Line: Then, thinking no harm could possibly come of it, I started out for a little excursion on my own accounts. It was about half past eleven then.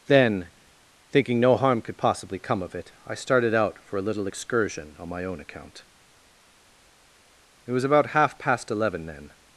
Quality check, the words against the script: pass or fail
fail